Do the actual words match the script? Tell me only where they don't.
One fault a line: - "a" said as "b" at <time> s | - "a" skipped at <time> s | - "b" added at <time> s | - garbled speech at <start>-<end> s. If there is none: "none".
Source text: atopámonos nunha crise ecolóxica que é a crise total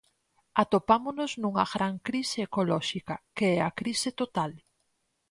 - "gran" added at 1.7 s